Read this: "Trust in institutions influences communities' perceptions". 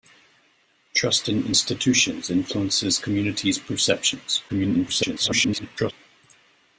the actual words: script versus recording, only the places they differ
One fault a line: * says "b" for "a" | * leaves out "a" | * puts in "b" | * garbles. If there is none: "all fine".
* garbles